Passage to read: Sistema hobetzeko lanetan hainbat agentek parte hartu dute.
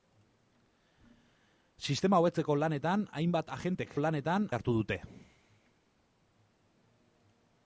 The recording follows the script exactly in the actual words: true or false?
false